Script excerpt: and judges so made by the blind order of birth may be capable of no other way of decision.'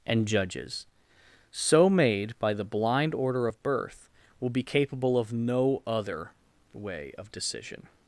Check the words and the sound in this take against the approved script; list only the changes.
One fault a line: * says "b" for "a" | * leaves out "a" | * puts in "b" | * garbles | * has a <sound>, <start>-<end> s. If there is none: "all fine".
* says "will" for "may"